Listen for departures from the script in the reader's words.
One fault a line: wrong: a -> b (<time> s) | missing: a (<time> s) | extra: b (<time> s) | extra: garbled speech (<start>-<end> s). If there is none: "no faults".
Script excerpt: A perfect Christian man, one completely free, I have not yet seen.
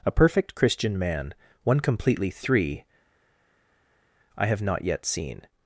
wrong: free -> three (2.3 s)